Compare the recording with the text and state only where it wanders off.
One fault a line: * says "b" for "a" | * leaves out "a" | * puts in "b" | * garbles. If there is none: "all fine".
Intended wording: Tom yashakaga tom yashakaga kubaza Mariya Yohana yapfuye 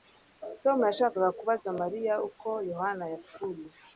* leaves out "tom yashakaga"
* puts in "uko"